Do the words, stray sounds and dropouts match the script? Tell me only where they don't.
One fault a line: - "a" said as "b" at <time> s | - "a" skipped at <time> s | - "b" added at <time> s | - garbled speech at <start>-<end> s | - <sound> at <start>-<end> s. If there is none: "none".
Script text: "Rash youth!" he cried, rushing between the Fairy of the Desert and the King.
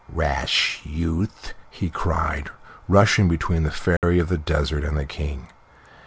- dropout at 4.0-4.0 s